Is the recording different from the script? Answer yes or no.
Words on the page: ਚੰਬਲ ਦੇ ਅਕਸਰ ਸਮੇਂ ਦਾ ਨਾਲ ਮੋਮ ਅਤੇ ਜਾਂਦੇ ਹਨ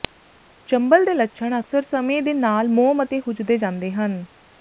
yes